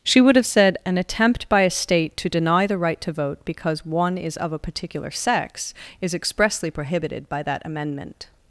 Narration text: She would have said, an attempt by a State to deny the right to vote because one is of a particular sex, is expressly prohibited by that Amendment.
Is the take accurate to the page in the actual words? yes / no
yes